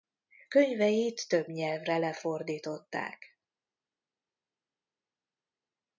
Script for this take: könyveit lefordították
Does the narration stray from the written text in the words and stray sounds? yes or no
yes